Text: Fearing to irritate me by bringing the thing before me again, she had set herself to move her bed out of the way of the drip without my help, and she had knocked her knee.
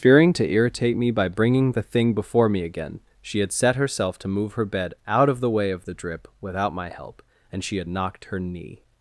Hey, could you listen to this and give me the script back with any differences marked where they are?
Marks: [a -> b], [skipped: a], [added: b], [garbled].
Fearing to irritate me by bringing the thing before me again, she had set herself to move her bed out of the way of the drip without my help, and she had knocked her knee.